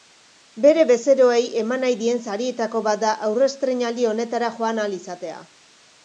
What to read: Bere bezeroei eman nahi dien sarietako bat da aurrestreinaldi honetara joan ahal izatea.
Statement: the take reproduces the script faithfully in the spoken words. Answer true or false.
true